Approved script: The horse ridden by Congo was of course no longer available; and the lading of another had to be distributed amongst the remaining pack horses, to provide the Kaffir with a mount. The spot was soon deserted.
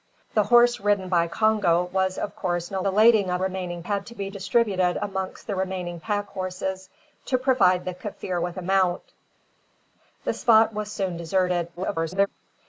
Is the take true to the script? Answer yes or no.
no